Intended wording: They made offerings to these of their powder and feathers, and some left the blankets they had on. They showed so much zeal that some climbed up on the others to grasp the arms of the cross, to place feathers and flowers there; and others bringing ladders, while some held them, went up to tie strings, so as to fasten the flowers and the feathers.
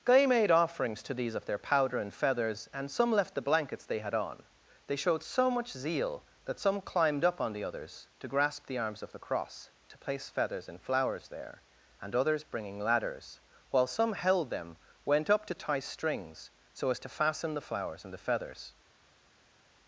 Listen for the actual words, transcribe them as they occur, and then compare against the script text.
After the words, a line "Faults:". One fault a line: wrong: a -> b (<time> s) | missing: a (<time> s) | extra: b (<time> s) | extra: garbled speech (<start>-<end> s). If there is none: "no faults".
Guy made offerings to these of their powder and feathers, and some left the blankets they had on. They showed so much zeal that some climbed up on the others to grasp the arms of the cross, to place feathers and flowers there; and others bringing ladders, while some held them, went up to tie strings, so as to fasten the flowers and the feathers.
Faults:
wrong: They -> Guy (0.0 s)